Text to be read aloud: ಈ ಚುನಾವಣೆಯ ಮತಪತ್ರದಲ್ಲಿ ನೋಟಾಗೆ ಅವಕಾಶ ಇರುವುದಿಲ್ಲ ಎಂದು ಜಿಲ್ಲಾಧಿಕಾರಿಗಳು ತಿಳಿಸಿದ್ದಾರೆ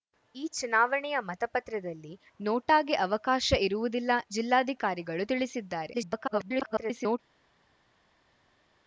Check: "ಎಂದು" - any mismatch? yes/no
yes